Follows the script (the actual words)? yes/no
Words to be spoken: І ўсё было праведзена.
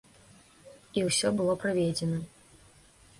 yes